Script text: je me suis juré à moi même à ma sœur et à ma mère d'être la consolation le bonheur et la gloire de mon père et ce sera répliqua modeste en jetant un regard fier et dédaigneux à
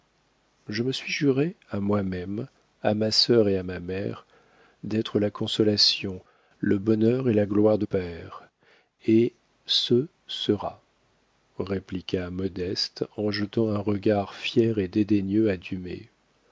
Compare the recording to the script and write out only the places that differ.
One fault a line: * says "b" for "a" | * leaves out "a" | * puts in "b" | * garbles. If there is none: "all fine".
* leaves out "mon"